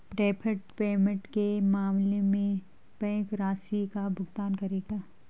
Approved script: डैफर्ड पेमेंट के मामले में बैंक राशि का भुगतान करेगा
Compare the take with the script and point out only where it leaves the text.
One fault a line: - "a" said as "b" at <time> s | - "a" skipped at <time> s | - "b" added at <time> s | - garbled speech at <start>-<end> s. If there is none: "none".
none